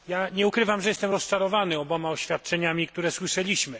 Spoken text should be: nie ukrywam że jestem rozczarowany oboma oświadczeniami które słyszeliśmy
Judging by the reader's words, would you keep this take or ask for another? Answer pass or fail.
pass